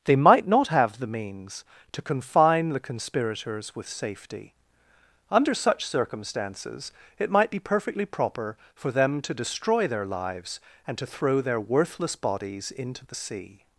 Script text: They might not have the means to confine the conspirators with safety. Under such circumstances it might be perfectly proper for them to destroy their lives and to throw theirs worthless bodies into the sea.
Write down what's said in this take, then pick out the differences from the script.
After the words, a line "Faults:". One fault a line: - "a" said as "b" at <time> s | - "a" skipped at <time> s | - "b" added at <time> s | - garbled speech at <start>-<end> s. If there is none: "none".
They might not have the means to confine the conspirators with safety. Under such circumstances it might be perfectly proper for them to destroy their lives and to throw their worthless bodies into the sea.
Faults:
- "theirs" said as "their" at 11.4 s